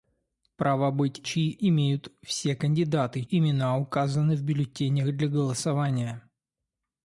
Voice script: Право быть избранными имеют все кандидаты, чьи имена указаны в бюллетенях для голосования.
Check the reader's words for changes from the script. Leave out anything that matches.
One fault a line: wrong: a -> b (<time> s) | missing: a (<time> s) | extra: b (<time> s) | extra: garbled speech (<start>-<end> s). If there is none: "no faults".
wrong: избранными -> чьи (1.2 s)
missing: чьи (3.2 s)